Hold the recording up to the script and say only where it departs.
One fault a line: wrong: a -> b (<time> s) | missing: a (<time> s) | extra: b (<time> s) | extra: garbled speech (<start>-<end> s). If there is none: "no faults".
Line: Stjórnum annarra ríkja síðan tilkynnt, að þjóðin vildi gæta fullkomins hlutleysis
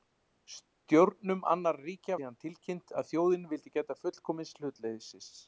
no faults